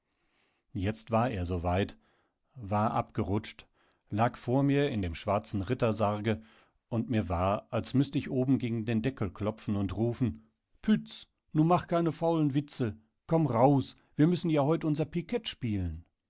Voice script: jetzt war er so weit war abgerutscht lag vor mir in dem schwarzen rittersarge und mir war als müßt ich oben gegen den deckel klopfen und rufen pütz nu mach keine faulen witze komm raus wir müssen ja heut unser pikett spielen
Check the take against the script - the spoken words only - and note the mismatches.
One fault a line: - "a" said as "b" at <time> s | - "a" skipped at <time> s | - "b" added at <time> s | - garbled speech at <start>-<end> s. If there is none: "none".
none